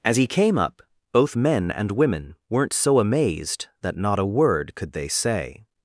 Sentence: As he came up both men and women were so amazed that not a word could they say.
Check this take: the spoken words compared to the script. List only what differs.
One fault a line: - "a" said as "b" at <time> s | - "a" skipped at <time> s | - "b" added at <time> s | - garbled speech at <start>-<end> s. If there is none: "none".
- "were" said as "weren't" at 2.5 s